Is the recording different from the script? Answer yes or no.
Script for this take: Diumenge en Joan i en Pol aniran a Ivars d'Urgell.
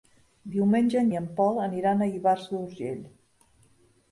yes